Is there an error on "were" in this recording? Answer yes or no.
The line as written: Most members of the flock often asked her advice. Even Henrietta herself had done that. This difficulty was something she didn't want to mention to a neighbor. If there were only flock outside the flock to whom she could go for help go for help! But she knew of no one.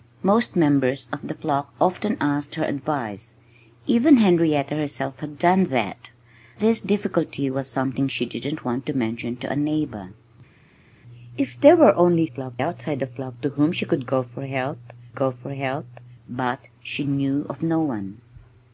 no